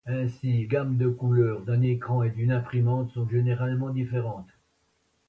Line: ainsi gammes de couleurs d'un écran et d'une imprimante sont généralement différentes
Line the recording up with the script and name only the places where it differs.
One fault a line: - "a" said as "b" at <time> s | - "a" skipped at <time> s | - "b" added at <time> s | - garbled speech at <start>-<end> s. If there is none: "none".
none